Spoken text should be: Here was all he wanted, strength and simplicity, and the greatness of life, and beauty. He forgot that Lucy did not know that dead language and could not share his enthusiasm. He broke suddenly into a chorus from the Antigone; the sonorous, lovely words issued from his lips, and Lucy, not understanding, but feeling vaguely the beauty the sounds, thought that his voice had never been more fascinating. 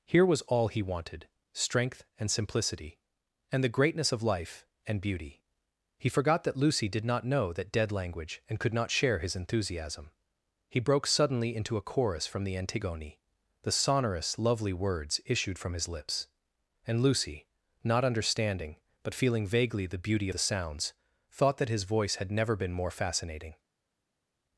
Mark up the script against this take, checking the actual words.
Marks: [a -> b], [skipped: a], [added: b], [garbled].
Here was all he wanted, strength and simplicity, and the greatness of life, and beauty. He forgot that Lucy did not know that dead language and could not share his enthusiasm. He broke suddenly into a chorus from the Antigone; the sonorous, lovely words issued from his lips, and Lucy, not understanding, but feeling vaguely the beauty the sounds, thought that his voice had never been more fascinating.